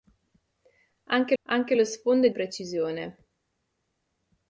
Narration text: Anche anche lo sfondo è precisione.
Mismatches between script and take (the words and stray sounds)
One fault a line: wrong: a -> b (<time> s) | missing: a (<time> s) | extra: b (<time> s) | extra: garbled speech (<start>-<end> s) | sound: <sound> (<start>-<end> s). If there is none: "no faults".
no faults